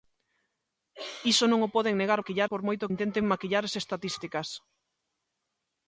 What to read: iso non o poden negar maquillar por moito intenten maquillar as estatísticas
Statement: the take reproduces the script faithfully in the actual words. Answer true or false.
true